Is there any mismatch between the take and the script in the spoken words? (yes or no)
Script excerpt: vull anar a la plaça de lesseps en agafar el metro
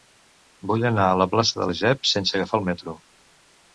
yes